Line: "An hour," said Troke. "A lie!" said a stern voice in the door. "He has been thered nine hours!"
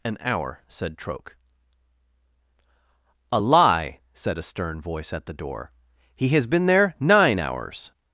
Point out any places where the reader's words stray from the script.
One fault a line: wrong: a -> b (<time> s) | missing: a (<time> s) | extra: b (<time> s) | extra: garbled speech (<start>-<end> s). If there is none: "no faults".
wrong: in -> at (5.1 s)
wrong: thered -> there (6.7 s)